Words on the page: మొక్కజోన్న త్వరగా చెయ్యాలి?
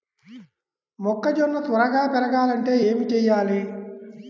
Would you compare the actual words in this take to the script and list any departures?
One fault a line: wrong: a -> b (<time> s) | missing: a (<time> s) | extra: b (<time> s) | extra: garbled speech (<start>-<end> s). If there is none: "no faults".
extra: పెరగాలంటే ఏమి (2.1 s)